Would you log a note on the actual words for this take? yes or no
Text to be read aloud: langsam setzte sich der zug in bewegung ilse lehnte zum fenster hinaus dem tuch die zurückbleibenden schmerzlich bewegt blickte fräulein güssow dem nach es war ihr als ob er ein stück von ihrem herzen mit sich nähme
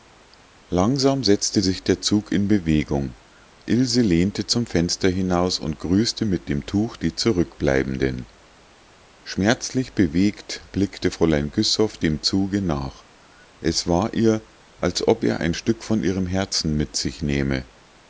yes